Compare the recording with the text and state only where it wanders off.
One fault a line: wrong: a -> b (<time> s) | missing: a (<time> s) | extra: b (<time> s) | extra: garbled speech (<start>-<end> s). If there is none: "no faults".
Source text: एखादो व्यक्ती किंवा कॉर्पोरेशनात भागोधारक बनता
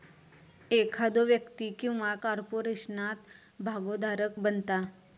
no faults